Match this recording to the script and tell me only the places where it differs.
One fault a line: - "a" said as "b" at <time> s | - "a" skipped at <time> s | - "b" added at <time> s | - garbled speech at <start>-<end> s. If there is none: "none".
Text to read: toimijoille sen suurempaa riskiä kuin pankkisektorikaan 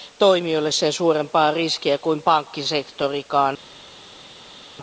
none